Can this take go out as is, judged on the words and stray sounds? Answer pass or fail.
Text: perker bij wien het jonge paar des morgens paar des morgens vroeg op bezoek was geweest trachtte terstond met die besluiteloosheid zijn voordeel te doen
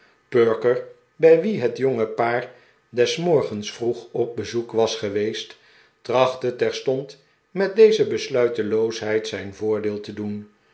fail